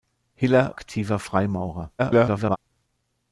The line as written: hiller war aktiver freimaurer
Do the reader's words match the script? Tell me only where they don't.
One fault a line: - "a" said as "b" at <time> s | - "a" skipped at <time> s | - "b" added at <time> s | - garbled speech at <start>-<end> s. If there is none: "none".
- "war" skipped at 0.7 s
- garbled speech at 2.0-2.6 s